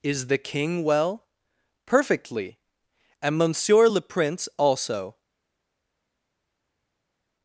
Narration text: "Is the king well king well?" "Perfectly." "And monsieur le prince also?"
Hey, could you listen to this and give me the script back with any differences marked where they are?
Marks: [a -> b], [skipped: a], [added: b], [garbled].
"Is the king well [skipped: king well?"] "Perfectly." "And monsieur le prince also?"